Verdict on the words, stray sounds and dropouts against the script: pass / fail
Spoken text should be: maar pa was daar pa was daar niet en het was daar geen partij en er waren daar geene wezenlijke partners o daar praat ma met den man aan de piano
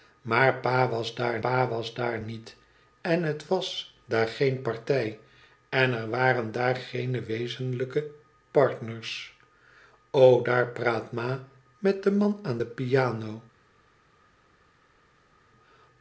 pass